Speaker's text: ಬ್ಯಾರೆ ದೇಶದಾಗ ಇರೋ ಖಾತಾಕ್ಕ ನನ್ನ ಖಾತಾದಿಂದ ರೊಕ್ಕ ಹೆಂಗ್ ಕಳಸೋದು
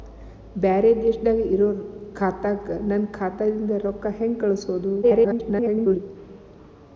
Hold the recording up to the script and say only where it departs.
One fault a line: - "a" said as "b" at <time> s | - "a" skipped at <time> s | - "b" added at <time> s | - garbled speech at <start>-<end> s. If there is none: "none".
- garbled speech at 5.0-6.0 s